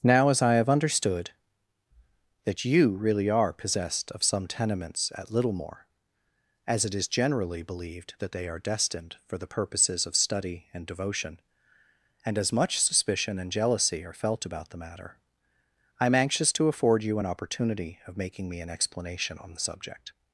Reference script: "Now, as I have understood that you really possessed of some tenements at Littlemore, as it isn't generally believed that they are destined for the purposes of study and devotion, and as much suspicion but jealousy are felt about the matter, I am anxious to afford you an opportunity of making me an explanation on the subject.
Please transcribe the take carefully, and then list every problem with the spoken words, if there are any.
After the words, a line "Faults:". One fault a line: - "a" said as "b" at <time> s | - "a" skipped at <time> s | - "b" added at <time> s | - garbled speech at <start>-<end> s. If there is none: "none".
"Now, as I have understood that you really are possessed of some tenements at Littlemore, as it is generally believed that they are destined for the purposes of study and devotion, and as much suspicion and jealousy are felt about the matter, I am anxious to afford you an opportunity of making me an explanation on the subject.
Faults:
- "are" added at 3.3 s
- "isn't" said as "is" at 7.0 s
- "but" said as "and" at 13.4 s